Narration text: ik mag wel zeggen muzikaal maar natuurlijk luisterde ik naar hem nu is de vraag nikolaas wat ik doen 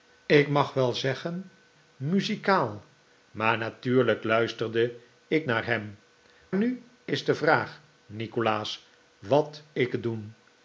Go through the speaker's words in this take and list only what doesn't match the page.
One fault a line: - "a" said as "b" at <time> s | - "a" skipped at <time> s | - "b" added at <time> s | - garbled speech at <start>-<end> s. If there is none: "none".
none